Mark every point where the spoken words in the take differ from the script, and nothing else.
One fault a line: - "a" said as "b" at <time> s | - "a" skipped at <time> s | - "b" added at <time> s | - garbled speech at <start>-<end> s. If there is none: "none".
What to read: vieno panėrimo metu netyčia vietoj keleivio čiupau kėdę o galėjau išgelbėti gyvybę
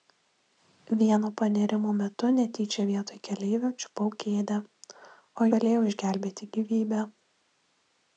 none